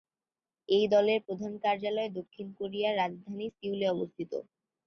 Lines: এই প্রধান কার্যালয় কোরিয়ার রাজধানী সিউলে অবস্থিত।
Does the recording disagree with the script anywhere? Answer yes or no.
yes